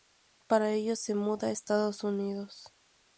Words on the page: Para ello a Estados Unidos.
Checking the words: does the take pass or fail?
fail